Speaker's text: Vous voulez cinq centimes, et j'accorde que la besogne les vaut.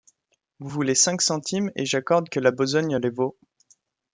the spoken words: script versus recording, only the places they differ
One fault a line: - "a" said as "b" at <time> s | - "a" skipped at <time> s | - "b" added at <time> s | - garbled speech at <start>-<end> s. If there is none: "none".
none